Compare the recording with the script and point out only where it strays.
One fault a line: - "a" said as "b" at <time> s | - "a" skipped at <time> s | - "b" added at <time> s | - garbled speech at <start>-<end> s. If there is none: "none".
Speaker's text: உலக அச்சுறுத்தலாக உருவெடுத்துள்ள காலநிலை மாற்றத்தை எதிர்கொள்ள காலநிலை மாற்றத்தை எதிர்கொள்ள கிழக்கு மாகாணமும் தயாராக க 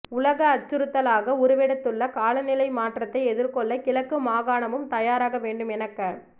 - "காலநிலை மாற்றத்தை எதிர்கொள்ள" skipped at 3.8 s
- "வேண்டும் என" added at 5.4 s